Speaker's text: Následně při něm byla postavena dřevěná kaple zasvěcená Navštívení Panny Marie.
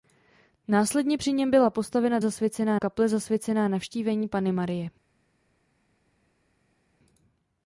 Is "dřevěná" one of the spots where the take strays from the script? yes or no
yes